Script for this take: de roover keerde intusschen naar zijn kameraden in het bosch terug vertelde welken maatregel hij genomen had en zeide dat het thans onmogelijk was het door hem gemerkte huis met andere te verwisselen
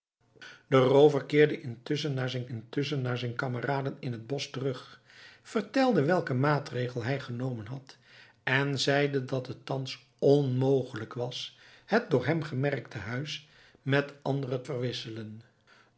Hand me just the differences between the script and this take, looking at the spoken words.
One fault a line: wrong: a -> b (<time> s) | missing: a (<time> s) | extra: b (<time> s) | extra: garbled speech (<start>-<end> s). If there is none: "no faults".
extra: intusschen naar zijn (2.5 s)
missing: te (14.6 s)